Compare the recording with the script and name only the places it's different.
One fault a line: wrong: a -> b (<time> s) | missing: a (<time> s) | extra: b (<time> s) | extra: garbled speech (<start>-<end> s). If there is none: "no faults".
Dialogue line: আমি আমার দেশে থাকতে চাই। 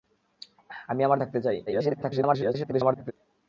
missing: দেশে (1.2 s)
extra: garbled speech (1.7-3.1 s)